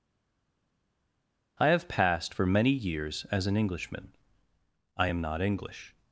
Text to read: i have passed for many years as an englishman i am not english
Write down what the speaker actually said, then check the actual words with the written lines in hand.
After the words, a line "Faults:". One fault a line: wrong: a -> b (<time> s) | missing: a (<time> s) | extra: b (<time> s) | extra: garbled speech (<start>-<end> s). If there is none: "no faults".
i have passed for many years as an englishman i am not english
Faults:
no faults